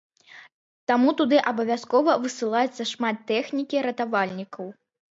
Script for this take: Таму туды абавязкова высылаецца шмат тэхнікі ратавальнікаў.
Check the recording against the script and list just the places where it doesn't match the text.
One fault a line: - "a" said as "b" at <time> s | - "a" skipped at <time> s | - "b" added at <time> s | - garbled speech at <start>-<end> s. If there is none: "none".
none